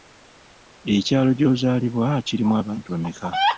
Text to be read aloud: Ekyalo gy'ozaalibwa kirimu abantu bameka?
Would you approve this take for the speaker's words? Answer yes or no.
yes